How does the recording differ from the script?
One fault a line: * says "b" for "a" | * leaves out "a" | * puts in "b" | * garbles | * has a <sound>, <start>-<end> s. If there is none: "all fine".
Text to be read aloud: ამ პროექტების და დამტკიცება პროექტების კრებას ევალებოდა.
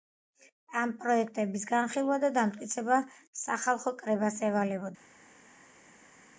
* puts in "განხილვა"
* says "სახალხო" for "პროექტების"